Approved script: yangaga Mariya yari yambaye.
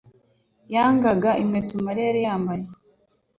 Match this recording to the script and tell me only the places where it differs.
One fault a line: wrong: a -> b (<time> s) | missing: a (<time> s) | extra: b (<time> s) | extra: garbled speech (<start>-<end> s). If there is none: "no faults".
extra: inkweto (1.4 s)